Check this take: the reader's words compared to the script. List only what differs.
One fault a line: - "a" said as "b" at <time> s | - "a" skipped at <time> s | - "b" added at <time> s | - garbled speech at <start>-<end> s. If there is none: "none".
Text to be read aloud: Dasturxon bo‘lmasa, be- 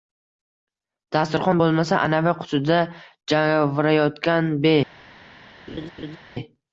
- "anavi qutida javrayotgan" added at 2.1 s